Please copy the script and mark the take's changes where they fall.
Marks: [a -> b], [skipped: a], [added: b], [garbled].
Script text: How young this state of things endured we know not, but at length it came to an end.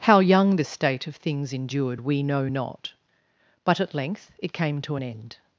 How young this state of things endured we know not, but at length it came to an end.